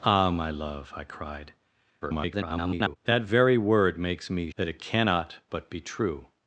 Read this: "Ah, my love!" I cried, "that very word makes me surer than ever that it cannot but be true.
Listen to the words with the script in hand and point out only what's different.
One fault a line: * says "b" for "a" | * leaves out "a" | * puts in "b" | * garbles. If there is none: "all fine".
* garbles
* leaves out "surer than ever"